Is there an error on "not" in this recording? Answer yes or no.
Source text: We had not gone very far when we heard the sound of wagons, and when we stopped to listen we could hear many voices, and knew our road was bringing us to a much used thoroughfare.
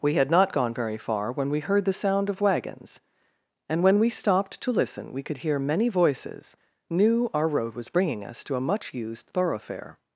no